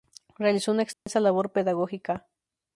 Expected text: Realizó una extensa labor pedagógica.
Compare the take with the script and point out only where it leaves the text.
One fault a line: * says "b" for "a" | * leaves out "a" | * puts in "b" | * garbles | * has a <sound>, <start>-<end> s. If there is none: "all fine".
* has a dropout, 0.9-1.1 s